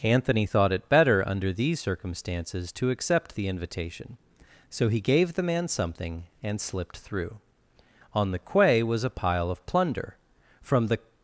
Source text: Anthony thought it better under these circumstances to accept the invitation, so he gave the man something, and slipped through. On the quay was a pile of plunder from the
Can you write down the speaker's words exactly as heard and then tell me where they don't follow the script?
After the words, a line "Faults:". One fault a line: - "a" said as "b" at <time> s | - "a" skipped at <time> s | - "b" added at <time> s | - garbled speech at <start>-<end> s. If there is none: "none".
Anthony thought it better under these circumstances to accept the invitation, so he gave the man something, and slipped through. On the quay was a pile of plunder from the
Faults:
none